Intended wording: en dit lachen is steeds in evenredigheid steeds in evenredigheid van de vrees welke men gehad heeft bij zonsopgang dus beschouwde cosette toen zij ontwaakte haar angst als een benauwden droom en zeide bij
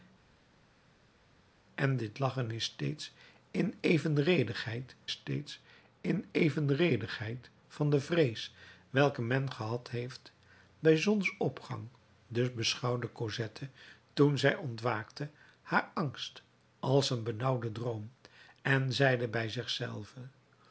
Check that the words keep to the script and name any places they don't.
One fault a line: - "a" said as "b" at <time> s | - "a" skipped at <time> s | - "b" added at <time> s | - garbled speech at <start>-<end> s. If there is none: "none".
none